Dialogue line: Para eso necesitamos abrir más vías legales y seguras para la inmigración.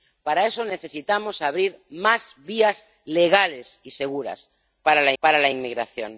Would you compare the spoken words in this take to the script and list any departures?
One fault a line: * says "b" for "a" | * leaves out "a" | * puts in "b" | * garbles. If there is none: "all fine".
* puts in "para la"